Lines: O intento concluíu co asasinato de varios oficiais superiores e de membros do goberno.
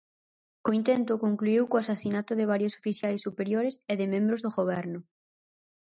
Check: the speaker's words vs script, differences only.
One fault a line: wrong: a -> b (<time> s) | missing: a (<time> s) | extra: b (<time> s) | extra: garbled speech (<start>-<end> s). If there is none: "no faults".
no faults